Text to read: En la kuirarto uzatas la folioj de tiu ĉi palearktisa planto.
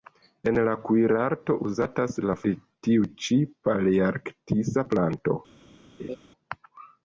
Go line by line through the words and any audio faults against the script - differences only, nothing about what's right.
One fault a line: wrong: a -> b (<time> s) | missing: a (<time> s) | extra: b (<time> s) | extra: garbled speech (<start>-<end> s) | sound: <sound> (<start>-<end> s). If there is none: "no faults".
missing: folioj (2.4 s)
sound: laugh (6.0-6.2 s)